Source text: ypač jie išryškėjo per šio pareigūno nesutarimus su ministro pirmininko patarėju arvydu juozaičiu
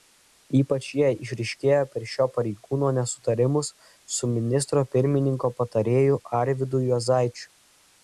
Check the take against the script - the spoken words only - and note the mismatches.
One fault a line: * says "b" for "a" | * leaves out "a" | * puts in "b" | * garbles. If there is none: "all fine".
all fine